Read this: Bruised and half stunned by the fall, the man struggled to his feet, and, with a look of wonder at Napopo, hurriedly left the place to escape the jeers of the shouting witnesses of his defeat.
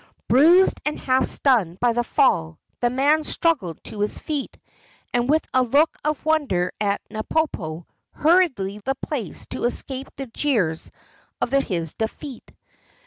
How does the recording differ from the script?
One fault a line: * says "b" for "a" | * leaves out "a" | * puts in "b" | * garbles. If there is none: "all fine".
* leaves out "left"
* leaves out "shouting witnesses of"